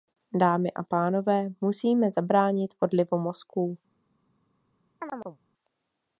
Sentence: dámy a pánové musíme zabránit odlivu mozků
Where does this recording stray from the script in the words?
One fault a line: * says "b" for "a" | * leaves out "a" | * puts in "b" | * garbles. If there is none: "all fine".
all fine